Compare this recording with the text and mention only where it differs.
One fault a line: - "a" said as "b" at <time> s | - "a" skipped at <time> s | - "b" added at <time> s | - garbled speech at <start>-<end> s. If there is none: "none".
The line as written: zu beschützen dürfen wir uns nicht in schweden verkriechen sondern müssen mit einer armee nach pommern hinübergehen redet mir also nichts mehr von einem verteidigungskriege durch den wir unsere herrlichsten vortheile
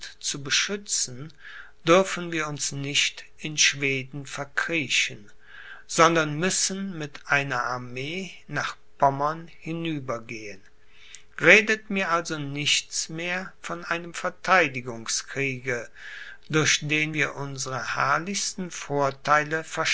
none